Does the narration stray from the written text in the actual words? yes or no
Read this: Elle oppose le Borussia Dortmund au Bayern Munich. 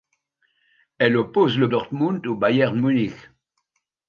yes